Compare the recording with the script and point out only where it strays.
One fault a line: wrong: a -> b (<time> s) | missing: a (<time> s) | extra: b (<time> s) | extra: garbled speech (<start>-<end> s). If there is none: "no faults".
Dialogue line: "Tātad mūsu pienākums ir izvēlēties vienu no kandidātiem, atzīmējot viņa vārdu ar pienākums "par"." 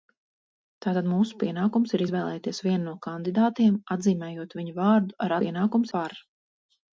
no faults